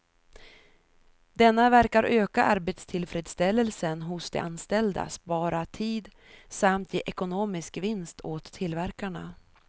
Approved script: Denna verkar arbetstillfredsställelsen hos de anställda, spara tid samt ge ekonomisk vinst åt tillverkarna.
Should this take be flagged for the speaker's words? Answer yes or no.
yes